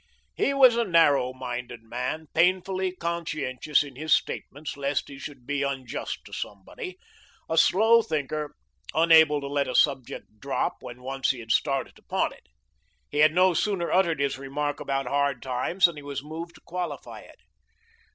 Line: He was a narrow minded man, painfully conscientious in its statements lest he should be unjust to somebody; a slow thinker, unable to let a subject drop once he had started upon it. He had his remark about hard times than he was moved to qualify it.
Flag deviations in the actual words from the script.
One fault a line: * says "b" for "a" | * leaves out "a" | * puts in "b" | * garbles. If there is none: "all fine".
* says "his" for "its"
* puts in "when"
* puts in "no sooner uttered"